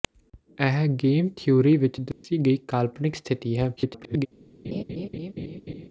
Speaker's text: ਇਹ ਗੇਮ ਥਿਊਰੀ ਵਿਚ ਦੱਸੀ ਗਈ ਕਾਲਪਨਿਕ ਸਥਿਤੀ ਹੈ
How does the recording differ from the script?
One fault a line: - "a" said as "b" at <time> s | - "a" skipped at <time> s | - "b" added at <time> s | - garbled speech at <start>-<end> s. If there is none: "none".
- garbled speech at 3.8-4.3 s